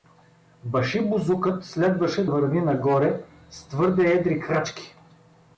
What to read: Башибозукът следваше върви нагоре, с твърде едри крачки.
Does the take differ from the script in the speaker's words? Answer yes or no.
no